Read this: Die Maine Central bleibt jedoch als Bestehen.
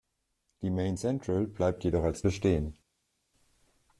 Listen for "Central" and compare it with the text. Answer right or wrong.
right